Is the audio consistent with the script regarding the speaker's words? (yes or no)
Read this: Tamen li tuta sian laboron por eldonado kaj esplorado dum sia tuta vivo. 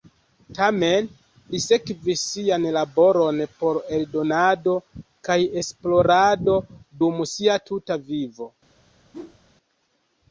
no